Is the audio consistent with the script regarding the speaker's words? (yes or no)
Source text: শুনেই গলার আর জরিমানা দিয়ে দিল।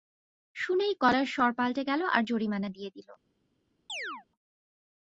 no